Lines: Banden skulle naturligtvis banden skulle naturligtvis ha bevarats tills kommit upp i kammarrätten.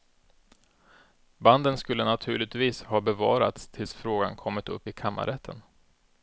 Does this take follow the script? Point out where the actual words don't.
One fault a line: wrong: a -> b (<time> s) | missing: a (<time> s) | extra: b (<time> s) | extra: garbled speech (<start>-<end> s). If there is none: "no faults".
missing: banden skulle naturligtvis (2.8 s)
extra: frågan (3.9 s)